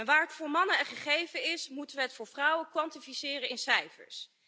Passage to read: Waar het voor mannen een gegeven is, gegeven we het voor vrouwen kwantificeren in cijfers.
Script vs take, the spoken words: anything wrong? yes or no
yes